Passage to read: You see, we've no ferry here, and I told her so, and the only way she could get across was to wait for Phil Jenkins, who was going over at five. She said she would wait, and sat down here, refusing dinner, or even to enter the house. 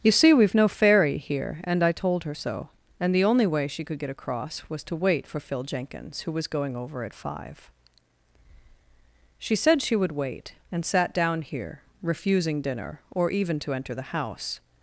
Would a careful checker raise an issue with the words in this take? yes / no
no